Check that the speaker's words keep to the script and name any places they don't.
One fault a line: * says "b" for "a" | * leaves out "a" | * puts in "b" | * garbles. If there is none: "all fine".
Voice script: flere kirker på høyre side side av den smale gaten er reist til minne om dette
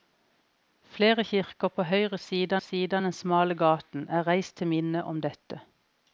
all fine